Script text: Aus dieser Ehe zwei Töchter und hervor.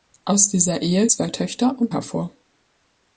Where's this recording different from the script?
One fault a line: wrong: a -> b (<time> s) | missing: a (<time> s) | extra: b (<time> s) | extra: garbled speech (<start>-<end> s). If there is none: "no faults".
no faults